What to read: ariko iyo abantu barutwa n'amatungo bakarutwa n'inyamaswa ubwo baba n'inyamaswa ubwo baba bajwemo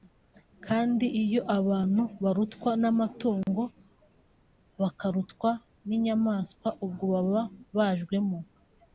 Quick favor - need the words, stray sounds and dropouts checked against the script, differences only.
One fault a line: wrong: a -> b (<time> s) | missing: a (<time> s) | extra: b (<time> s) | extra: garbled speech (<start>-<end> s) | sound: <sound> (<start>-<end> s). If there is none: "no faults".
wrong: ariko -> kandi (0.7 s)
sound: dropout (3.4-3.5 s)
missing: n'inyamaswa ubwo baba (7.4 s)